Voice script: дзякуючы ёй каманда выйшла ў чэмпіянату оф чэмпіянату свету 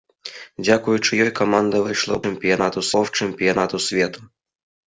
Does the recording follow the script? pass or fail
pass